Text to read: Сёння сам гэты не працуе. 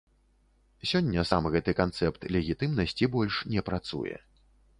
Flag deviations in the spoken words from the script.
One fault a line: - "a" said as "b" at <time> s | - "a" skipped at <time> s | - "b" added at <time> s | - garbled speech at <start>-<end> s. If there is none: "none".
- "канцэпт легітымнасці больш" added at 1.8 s